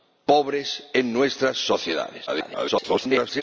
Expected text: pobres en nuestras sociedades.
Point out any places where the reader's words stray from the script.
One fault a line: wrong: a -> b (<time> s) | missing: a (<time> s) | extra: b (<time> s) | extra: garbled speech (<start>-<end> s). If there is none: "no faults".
extra: garbled speech (2.3-3.4 s)